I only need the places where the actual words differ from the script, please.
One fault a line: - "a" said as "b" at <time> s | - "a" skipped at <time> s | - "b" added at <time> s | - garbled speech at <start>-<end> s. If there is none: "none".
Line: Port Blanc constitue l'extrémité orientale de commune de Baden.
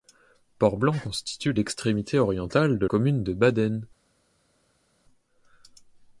none